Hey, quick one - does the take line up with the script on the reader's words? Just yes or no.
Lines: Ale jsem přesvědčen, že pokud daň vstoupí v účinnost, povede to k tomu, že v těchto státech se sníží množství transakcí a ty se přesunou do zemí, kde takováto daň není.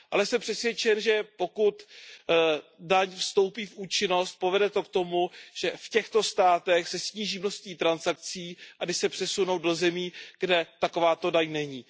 yes